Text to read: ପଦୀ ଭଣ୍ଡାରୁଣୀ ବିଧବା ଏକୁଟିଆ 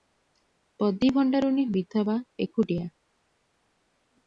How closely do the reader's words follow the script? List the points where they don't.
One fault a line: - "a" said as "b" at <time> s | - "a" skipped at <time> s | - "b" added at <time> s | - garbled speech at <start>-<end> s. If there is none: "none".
none